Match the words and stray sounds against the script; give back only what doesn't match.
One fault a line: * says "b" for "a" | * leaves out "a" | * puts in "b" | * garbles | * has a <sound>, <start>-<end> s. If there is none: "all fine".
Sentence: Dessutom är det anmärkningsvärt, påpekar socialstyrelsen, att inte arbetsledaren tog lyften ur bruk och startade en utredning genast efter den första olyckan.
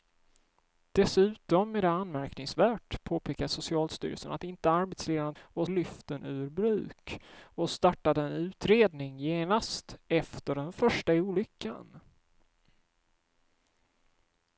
* says "och" for "tog"